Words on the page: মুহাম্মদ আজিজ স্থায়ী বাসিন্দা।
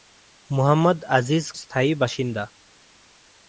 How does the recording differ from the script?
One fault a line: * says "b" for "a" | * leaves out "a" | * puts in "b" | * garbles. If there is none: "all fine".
all fine